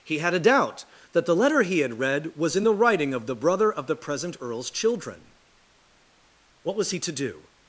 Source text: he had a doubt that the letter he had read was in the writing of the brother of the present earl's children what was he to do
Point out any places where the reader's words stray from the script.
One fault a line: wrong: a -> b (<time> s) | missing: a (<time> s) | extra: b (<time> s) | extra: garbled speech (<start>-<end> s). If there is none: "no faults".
no faults